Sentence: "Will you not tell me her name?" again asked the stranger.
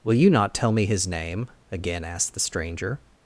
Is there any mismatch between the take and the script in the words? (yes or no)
yes